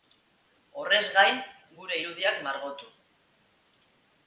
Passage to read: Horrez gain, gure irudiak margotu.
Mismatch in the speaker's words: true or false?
false